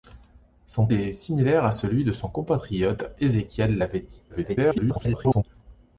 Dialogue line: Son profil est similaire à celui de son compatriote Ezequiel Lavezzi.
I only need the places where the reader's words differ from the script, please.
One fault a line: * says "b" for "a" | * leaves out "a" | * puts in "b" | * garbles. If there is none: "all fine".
* leaves out "profil"
* garbles